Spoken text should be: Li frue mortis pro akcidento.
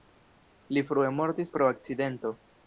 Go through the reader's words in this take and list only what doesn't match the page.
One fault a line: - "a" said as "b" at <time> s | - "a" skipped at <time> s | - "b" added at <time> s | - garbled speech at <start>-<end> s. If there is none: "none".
none